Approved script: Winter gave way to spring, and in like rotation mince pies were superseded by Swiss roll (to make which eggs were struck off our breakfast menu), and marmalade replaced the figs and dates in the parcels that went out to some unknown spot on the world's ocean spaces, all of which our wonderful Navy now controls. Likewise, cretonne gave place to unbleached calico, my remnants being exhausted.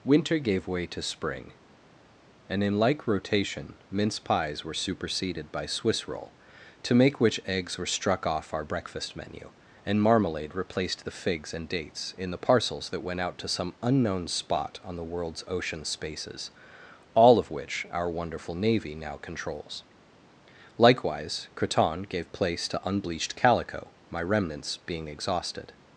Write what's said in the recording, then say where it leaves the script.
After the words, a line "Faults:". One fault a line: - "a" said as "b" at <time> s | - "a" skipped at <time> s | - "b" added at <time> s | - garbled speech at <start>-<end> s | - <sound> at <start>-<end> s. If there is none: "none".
Winter gave way to spring, and in like rotation mince pies were superseded by Swiss roll (to make which eggs were struck off our breakfast menu), and marmalade replaced the figs and dates in the parcels that went out to some unknown spot on the world's ocean spaces, all of which our wonderful Navy now controls. Likewise, cretonne gave place to unbleached calico, my remnants being exhausted.
Faults:
none